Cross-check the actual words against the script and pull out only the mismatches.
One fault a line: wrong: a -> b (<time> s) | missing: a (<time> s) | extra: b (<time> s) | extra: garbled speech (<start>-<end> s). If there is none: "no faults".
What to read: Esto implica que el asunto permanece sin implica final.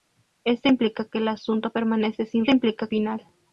no faults